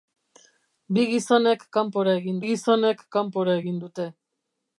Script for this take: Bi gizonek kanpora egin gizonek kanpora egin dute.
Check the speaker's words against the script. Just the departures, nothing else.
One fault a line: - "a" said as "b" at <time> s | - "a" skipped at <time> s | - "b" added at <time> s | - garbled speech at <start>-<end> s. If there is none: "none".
none